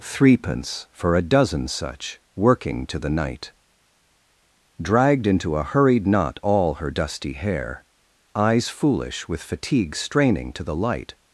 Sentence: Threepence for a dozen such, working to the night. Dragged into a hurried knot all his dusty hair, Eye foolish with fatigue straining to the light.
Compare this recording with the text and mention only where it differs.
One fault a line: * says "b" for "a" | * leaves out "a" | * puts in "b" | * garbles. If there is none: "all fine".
* says "her" for "his"
* says "Eyes" for "Eye"